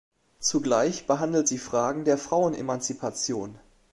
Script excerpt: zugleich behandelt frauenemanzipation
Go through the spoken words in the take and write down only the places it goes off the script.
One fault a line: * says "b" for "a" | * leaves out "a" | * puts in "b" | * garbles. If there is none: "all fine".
* puts in "sie fragen der"